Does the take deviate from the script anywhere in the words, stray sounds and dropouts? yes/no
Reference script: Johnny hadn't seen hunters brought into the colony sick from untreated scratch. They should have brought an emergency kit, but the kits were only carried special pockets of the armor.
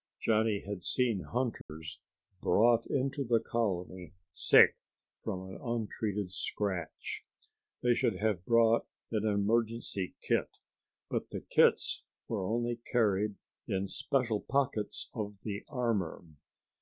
yes